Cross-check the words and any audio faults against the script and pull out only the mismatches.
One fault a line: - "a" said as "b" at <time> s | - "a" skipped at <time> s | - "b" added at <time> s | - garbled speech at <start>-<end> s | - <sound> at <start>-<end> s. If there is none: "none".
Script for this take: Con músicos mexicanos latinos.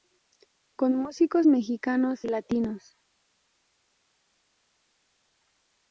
none